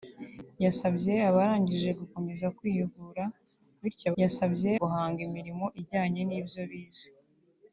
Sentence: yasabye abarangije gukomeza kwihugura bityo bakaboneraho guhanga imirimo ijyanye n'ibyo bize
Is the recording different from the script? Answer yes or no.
yes